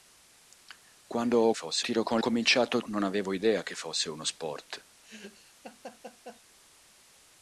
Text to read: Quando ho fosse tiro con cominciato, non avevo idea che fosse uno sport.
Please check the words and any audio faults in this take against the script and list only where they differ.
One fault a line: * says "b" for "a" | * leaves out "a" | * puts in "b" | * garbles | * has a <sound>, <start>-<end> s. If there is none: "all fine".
* has a laugh, 5.0-6.4 s